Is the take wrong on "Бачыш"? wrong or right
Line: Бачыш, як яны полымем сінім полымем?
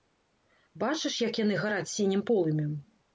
right